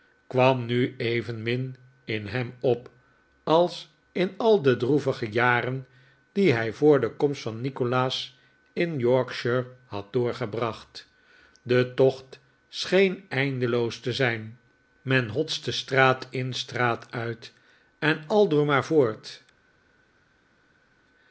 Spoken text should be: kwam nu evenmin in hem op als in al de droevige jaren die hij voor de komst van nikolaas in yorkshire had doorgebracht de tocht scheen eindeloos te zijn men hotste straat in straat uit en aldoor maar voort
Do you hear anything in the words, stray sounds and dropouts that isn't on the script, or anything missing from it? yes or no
no